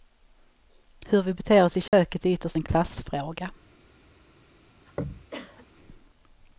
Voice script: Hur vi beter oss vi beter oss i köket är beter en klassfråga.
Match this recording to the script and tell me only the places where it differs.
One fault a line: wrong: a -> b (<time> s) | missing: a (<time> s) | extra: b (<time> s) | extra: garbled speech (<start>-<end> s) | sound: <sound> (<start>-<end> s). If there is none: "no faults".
missing: vi beter oss (1.8 s)
sound: dropout (1.9-1.9 s)
wrong: beter -> ytterst (2.3 s)
sound: throat clearing (4.8-5.7 s)